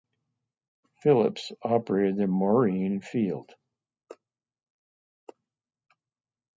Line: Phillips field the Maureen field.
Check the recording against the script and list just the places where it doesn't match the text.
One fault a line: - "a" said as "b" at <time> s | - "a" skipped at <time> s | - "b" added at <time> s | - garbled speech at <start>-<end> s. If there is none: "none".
- "field" said as "operated" at 1.6 s